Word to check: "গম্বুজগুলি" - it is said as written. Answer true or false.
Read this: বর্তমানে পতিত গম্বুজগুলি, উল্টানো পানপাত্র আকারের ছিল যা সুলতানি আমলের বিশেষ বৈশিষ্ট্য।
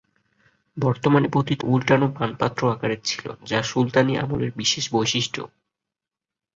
false